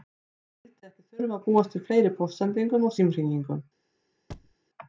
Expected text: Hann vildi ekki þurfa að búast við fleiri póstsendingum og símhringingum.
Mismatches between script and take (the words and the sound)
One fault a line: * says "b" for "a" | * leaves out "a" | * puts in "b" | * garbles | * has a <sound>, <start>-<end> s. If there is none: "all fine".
* has a thud, 4.3-4.6 s